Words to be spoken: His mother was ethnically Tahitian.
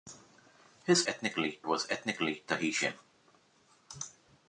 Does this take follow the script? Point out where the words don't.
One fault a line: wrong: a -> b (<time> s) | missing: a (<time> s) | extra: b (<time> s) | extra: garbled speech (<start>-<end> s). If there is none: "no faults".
wrong: mother -> ethnically (1.1 s)